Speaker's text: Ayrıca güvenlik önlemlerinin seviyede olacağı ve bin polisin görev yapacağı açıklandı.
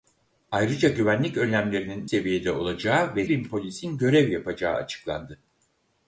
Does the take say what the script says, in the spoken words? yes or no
yes